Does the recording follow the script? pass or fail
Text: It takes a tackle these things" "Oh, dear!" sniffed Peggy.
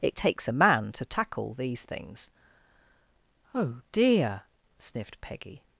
fail